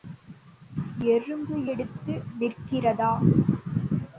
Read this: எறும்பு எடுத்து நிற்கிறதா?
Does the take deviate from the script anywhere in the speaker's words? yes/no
no